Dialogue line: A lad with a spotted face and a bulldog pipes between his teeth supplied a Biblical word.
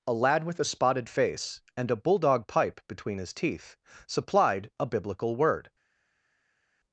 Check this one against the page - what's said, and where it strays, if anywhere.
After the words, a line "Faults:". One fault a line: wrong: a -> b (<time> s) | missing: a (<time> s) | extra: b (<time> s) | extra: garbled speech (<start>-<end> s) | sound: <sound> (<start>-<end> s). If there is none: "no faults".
A lad with a spotted face and a bulldog pipe between his teeth supplied a Biblical word.
Faults:
wrong: pipes -> pipe (2.5 s)